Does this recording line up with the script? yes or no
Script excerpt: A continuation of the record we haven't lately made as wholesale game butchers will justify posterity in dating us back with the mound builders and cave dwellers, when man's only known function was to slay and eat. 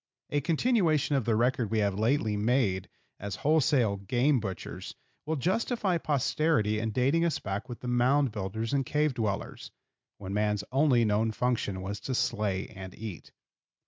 no